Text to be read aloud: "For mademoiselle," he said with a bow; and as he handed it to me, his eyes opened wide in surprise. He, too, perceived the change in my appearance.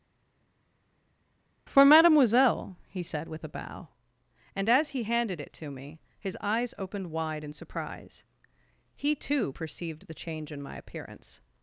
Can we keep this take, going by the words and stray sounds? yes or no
yes